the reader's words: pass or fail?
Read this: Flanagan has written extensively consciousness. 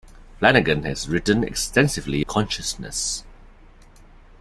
pass